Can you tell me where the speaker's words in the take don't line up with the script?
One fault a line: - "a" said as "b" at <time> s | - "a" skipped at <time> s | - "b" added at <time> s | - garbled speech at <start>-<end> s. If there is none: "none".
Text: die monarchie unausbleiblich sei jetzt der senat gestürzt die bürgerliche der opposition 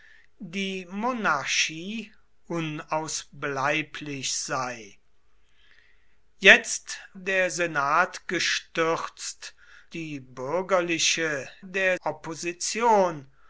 none